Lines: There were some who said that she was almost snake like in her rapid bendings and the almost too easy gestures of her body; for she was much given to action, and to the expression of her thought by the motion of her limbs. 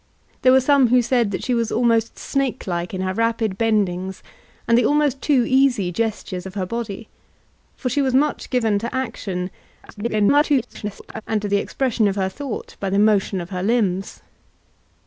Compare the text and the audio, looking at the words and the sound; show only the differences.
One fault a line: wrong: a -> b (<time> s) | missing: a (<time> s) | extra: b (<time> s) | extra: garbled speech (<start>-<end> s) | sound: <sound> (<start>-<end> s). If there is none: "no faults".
extra: garbled speech (9.8-11.2 s)